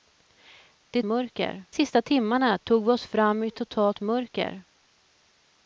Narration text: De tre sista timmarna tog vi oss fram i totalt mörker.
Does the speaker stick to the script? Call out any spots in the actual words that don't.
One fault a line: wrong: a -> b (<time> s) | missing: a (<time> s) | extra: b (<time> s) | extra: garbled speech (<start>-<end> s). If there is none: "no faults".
wrong: tre -> mörker (1.0 s)